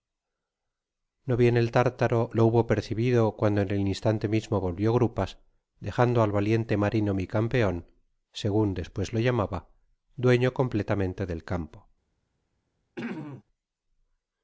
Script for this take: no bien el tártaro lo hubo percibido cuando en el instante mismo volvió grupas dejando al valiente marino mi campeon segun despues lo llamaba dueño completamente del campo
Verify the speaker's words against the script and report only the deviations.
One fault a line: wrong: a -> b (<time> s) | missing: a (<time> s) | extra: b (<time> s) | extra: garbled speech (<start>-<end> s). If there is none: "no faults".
no faults